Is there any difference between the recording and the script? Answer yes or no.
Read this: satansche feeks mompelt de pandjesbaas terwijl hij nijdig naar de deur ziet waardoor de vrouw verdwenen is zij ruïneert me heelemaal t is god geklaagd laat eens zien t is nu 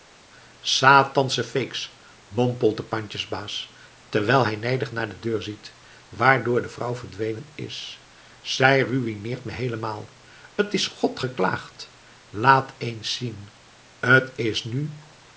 no